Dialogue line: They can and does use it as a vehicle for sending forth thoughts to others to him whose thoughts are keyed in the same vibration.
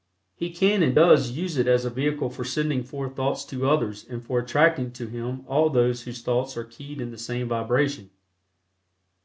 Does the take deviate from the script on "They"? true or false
true